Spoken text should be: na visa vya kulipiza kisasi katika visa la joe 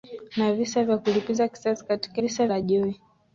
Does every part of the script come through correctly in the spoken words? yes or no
yes